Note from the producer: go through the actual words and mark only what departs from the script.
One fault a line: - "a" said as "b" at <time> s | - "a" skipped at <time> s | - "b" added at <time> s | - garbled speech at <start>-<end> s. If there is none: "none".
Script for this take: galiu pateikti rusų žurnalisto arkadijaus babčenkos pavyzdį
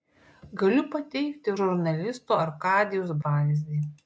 - "rusų" skipped at 1.5 s
- "babčenkos" skipped at 3.2 s